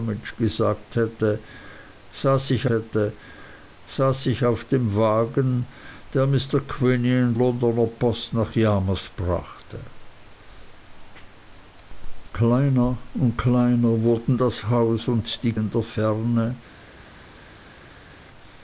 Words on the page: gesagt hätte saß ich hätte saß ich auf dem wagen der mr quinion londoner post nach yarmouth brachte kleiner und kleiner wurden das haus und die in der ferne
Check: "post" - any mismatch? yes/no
no